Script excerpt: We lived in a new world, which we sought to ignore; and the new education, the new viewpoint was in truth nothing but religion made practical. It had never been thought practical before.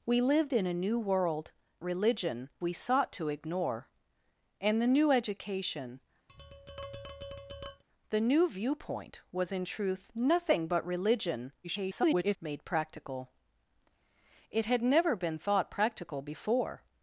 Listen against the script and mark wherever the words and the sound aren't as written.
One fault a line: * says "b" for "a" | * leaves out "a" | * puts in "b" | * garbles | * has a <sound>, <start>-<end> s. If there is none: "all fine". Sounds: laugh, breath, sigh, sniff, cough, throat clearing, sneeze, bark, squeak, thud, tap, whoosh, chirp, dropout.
* says "religion" for "which"
* has a tap, 6.3-7.8 s
* garbles